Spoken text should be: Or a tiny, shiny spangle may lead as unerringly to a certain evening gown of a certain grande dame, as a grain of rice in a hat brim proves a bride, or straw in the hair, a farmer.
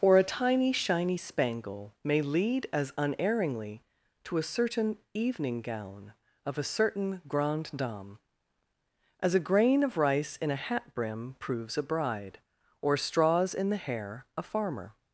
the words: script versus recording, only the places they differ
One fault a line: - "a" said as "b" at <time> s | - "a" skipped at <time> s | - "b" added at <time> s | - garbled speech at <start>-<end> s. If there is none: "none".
- "straw" said as "straws" at 13.0 s